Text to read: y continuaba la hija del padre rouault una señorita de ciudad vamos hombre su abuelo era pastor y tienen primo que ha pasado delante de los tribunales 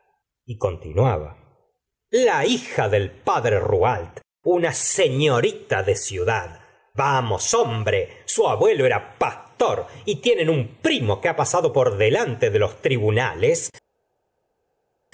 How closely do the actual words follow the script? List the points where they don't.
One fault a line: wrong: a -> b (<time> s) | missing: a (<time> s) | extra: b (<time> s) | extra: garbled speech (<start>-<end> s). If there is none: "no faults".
extra: un (10.5 s)
extra: por (11.7 s)